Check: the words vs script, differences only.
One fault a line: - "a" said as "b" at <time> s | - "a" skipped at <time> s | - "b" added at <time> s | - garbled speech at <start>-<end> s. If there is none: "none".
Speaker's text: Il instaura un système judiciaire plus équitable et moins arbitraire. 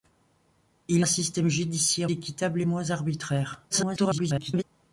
- "instaura" skipped at 1.1 s
- "plus" skipped at 2.1 s
- garbled speech at 3.7-4.6 s